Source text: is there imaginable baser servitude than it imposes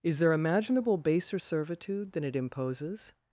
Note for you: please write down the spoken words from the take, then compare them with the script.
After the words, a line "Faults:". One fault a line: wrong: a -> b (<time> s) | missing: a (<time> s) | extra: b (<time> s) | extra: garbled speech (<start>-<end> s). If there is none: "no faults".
is there imaginable baser servitude than it imposes
Faults:
no faults